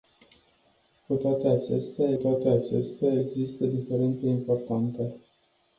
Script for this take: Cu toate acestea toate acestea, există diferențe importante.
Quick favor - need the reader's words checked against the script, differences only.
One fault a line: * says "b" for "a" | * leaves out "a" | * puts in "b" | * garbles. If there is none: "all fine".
all fine